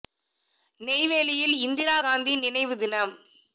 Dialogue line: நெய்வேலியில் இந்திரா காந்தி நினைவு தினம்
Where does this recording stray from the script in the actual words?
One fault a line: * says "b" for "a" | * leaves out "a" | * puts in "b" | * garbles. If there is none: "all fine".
all fine